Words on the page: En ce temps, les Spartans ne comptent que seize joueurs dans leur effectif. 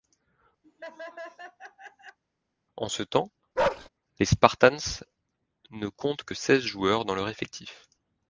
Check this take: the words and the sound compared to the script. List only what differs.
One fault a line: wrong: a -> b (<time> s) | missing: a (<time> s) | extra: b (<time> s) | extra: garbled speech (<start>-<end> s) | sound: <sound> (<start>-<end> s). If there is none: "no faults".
sound: laugh (0.6-2.2 s)
sound: bark (3.6-3.9 s)